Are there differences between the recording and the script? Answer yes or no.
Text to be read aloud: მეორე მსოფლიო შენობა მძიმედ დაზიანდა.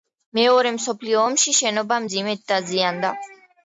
yes